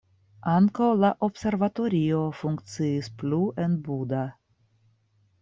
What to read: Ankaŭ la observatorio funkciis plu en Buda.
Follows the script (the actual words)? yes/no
yes